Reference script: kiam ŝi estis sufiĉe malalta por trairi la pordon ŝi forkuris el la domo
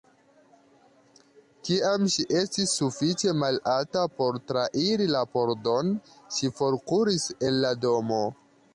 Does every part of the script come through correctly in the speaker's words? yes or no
yes